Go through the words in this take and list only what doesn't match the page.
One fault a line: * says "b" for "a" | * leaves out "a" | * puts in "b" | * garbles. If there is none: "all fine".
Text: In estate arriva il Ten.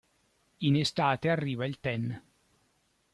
all fine